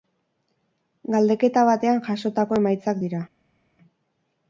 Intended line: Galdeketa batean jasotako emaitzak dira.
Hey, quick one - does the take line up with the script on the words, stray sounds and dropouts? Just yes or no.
yes